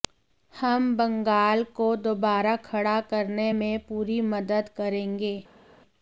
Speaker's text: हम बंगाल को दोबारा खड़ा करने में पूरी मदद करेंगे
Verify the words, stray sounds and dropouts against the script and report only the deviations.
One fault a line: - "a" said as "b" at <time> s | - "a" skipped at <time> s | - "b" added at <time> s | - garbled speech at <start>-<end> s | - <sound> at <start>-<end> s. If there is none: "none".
none